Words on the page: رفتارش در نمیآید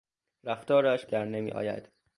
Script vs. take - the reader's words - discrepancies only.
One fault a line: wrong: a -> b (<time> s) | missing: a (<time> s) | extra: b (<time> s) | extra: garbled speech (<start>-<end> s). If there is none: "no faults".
no faults